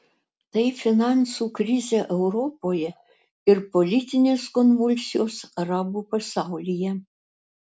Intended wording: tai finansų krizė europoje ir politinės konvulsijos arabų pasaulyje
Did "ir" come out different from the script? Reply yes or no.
no